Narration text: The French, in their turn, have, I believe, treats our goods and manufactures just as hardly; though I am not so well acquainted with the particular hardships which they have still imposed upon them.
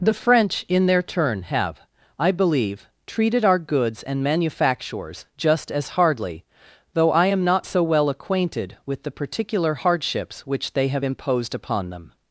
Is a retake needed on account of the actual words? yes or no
yes